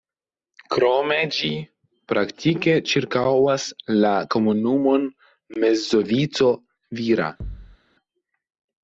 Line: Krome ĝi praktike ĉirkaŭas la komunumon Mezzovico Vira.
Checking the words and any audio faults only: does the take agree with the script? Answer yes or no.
no